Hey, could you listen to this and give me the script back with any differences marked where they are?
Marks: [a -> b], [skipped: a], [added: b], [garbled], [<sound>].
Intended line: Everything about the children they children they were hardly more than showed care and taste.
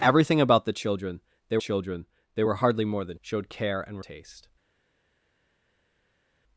Everything about the children they children they were hardly more than showed care and taste.